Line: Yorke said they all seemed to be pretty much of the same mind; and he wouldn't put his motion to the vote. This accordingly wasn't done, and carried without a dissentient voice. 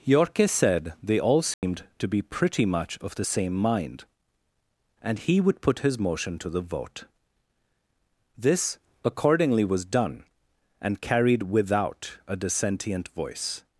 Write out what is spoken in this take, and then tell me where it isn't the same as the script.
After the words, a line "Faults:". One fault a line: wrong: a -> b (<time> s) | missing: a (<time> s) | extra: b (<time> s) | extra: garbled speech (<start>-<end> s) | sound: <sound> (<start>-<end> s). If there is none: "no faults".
Yorke said they all seemed to be pretty much of the same mind; and he would put his motion to the vote. This accordingly was done, and carried without a dissentient voice.
Faults:
sound: dropout (1.5-1.6 s)
wrong: wouldn't -> would (5.4 s)
wrong: wasn't -> was (9.6 s)